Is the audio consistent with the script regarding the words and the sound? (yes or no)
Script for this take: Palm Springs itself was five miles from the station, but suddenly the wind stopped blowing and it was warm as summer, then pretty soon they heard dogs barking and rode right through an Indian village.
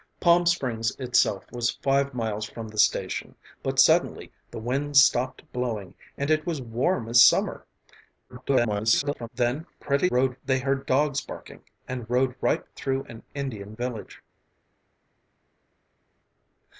no